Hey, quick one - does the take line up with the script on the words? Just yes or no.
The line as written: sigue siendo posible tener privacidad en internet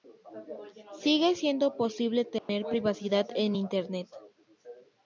yes